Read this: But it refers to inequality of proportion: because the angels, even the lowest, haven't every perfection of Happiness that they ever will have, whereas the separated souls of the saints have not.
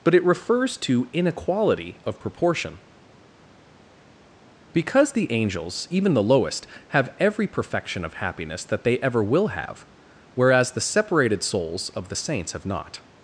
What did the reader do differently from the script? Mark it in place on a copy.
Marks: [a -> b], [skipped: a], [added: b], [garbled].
But it refers to inequality of proportion: because the angels, even the lowest, [haven't -> have] every perfection of Happiness that they ever will have, whereas the separated souls of the saints have not.